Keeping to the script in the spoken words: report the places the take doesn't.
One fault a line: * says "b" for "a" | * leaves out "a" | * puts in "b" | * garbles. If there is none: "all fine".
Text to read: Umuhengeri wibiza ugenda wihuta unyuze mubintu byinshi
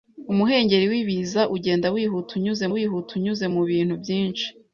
* puts in "wihuta unyuze"